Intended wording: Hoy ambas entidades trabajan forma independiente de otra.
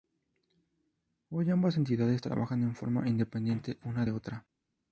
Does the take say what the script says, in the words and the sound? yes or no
no